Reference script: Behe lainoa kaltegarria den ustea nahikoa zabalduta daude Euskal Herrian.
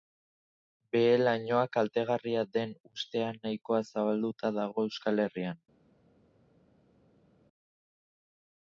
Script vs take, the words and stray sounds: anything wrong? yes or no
yes